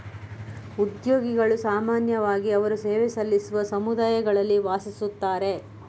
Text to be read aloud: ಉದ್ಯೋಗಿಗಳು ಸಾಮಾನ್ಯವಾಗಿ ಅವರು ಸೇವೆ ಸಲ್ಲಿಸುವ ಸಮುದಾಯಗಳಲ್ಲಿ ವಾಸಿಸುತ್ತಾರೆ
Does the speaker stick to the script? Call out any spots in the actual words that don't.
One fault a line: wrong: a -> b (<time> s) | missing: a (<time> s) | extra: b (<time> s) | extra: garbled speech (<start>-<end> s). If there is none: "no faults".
no faults